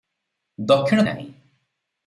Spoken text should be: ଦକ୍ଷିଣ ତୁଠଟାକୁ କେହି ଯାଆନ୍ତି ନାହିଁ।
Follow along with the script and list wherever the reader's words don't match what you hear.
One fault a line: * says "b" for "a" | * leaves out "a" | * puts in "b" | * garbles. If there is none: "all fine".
* leaves out "ତୁଠଟାକୁ କେହି ଯାଆନ୍ତି"